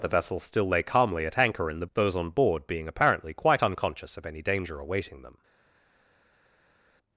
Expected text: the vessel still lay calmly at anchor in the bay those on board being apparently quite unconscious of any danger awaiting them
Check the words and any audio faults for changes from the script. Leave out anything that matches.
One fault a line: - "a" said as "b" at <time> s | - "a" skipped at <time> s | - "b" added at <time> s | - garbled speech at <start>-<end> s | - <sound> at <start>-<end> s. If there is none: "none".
- "bay" skipped at 1.9 s